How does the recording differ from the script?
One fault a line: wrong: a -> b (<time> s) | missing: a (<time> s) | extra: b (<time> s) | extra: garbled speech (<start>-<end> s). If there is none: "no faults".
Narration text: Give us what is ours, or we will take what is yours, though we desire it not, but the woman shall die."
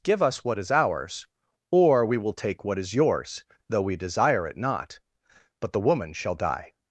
no faults